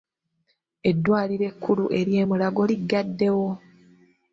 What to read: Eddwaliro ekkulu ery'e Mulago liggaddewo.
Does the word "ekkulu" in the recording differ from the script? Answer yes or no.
no